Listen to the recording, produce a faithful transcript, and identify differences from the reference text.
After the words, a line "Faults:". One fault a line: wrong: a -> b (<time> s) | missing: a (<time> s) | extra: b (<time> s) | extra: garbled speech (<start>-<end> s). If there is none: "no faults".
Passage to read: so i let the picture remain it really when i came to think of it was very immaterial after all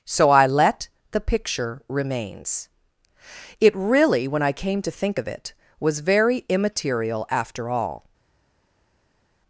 so i let the picture remains it really when i came to think of it was very immaterial after all
Faults:
wrong: remain -> remains (1.9 s)